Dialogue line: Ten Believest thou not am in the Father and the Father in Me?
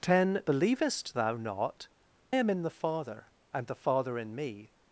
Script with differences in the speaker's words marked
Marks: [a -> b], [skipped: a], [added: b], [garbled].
Ten Believest thou not am in the Father and the Father in Me?